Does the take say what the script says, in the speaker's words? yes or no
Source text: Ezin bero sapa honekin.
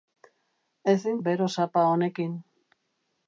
yes